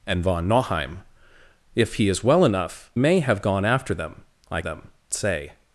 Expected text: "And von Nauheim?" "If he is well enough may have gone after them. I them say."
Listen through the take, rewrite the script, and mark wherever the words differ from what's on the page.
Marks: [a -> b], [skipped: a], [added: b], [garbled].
"And von Nauheim?" "If he is well enough may have gone after them. I them say."